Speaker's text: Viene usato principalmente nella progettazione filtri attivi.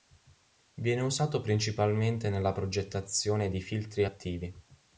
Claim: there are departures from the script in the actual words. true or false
true